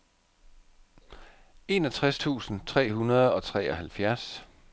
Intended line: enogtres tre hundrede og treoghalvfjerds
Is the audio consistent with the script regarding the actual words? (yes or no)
no